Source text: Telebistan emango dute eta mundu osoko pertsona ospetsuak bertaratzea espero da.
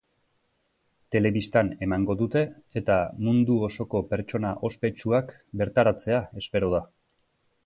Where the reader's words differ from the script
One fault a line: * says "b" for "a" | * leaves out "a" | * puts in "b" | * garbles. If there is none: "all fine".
all fine